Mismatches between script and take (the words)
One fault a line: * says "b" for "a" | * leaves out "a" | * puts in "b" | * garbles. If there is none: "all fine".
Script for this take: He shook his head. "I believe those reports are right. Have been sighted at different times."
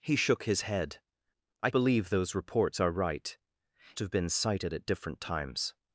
all fine